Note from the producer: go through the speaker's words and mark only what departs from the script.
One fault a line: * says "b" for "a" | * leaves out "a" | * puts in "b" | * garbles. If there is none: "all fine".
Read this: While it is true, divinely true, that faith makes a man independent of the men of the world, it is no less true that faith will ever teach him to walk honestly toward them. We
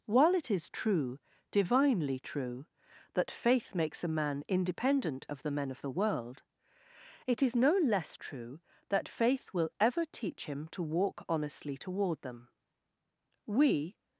all fine